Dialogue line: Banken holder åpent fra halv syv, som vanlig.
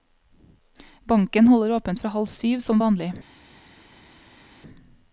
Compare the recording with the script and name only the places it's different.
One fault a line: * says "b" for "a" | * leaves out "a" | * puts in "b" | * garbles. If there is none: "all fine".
all fine